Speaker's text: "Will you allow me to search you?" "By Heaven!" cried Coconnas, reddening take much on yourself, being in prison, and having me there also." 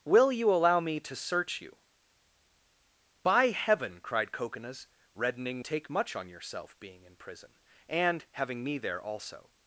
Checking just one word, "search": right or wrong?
right